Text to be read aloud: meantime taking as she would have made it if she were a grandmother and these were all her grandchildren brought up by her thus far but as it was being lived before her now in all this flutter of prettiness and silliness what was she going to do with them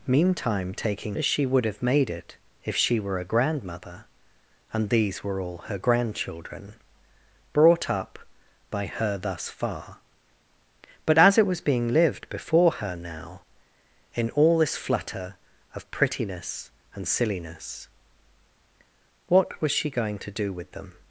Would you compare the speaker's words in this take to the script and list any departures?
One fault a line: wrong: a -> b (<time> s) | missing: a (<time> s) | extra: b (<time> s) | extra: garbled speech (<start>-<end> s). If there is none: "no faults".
no faults